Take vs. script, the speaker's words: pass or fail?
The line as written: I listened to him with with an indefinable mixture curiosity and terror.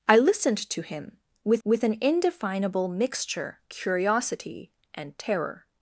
pass